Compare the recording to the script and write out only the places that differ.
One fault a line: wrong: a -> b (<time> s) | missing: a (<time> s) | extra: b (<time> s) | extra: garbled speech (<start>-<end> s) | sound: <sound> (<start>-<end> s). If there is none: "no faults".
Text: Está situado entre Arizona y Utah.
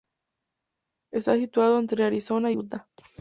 no faults